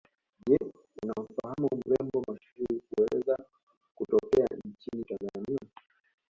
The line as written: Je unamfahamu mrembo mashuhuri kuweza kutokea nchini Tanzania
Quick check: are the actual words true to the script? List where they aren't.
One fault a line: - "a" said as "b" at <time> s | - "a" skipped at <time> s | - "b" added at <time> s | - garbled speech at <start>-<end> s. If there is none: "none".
none